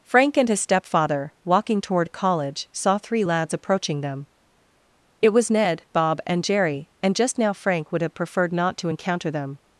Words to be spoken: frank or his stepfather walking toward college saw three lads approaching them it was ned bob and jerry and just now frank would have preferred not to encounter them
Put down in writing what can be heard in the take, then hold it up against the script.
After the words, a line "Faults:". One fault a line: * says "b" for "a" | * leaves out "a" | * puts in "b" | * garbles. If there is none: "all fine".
frank and his stepfather walking toward college saw three lads approaching them it was ned bob and jerry and just now frank would have preferred not to encounter them
Faults:
* says "and" for "or"